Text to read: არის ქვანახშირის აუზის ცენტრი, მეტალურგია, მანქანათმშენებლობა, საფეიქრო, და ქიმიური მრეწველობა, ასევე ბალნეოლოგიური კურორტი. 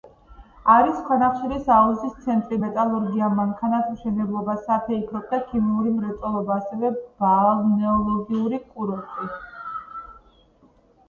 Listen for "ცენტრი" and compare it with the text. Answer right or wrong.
right